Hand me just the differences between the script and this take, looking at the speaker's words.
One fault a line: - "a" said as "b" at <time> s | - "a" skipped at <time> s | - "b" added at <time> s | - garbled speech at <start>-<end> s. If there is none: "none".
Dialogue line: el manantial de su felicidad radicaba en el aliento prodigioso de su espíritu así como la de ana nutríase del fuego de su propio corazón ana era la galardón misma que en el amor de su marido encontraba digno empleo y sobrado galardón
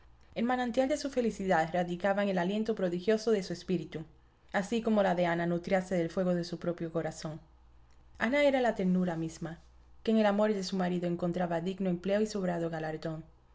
- "galardón" said as "ternura" at 8.7 s